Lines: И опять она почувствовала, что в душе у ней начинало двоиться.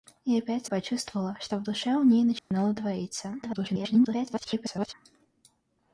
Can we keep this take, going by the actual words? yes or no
no